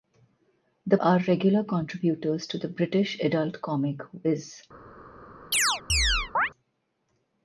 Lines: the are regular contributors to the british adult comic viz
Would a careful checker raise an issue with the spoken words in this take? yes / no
no